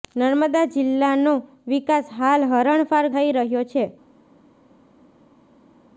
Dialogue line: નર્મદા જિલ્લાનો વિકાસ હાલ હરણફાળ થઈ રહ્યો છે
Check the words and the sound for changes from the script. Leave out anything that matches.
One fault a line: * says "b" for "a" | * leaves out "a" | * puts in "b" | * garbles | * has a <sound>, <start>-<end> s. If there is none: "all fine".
all fine